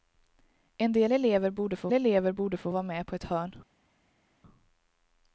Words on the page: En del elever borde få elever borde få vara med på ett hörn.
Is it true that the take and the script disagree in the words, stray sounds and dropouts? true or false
false